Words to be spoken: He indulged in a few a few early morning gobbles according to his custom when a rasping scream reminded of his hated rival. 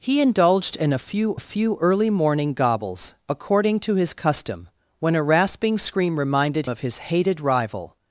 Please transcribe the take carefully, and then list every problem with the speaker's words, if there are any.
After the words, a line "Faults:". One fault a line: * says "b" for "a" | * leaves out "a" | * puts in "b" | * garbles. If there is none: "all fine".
He indulged in a few a few early morning gobbles according to his custom when a rasping scream reminded of his hated rival.
Faults:
all fine